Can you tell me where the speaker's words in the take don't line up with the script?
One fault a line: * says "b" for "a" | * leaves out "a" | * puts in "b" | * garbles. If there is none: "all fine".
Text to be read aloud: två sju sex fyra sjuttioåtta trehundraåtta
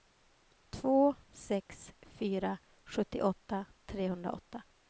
* leaves out "sju"